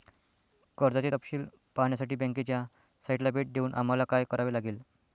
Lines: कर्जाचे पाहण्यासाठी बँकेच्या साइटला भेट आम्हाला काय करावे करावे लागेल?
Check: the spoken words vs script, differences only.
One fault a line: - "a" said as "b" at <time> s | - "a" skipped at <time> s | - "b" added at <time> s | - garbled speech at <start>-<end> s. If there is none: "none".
- "तपशील" added at 1.1 s
- "देऊन" added at 3.5 s
- "करावे" skipped at 4.5 s